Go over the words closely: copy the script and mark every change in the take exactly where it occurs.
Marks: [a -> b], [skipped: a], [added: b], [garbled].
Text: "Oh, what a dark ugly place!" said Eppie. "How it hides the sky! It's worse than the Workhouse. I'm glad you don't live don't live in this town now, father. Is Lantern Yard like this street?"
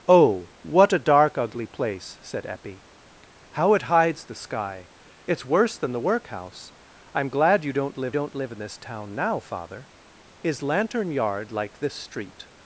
"Oh, what a dark ugly place!" said Eppie. "How it hides the sky! It's worse than the Workhouse. I'm glad you don't live don't live in this town now, father. Is Lantern Yard like this street?"